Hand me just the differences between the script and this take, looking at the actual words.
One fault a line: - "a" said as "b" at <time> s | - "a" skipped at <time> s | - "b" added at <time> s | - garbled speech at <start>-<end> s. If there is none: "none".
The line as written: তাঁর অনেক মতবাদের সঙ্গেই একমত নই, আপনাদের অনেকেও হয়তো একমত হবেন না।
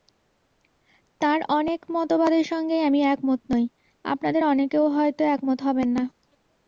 - "আমি" added at 2.9 s